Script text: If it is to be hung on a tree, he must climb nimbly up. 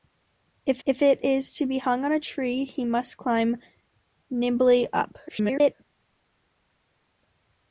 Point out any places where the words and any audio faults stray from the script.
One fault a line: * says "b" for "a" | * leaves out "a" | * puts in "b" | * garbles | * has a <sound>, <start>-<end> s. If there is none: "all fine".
* puts in "if"
* garbles